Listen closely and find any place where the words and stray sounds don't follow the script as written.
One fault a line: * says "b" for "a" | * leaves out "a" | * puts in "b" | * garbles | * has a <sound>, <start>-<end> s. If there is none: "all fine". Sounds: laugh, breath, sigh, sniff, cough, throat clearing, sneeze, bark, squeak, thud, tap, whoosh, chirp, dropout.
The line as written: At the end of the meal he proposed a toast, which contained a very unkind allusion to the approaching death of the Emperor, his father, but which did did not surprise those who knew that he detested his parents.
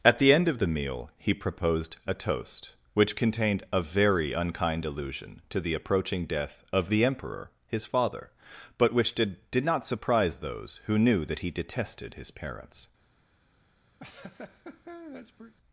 * has a laugh, 14.0-15.5 s